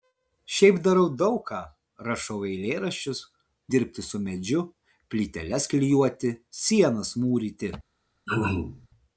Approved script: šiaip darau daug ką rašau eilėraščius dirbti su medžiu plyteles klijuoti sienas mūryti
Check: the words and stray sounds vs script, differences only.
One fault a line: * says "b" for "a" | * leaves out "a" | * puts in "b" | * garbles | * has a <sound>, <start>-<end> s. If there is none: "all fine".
* has a throat clearing, 8.3-8.9 s